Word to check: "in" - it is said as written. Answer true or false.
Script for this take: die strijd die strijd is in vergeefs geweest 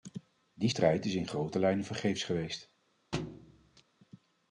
false